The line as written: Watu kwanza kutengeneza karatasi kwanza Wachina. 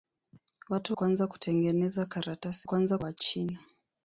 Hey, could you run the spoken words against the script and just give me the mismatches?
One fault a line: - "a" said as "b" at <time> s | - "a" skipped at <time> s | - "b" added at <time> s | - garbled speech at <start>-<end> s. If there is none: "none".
none